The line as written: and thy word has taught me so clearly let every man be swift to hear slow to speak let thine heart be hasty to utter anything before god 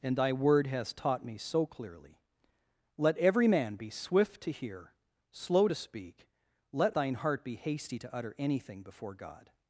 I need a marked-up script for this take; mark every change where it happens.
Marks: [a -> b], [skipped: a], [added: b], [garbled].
and thy word has taught me so clearly let every man be swift to hear slow to speak let thine heart be hasty to utter anything before god